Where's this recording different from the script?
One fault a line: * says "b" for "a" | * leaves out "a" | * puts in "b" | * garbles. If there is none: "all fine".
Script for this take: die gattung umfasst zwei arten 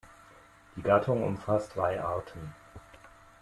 all fine